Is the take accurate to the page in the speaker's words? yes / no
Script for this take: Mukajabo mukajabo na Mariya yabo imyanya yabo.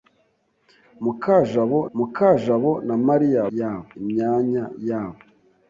yes